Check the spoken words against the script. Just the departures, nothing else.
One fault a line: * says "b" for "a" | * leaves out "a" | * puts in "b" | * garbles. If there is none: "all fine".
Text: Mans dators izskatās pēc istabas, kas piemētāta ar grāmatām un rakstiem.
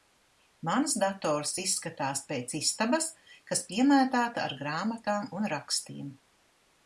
all fine